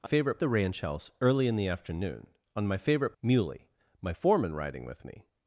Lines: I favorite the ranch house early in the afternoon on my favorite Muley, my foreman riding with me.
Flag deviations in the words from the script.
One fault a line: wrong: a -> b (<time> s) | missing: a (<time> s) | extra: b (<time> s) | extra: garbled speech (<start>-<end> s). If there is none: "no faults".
no faults